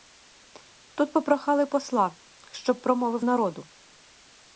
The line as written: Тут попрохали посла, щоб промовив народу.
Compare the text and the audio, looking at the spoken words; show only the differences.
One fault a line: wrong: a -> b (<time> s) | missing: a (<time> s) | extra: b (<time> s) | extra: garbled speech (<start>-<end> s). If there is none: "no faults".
no faults